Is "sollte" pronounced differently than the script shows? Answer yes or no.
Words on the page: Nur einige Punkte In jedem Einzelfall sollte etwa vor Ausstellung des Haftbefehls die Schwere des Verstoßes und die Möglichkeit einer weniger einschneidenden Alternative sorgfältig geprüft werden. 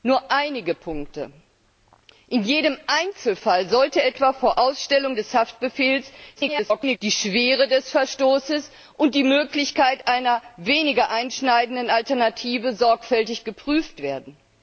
no